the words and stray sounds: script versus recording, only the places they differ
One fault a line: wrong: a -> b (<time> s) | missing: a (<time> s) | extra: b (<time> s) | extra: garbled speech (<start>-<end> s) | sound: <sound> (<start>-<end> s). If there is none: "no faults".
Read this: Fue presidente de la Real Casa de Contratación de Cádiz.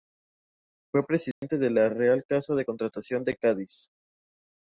sound: dropout (1.3-1.4 s)